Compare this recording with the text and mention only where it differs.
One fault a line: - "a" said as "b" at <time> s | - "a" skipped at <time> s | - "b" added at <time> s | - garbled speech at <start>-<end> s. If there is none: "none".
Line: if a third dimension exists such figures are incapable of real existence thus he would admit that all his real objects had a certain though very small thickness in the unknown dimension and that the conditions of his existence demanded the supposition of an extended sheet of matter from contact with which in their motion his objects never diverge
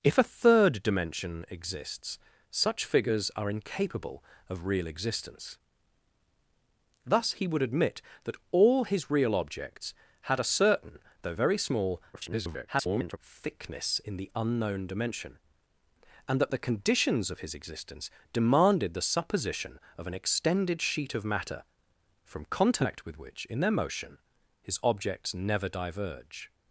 - garbled speech at 12.1-13.2 s